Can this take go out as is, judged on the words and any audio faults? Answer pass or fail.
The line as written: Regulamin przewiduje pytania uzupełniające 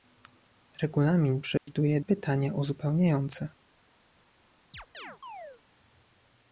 fail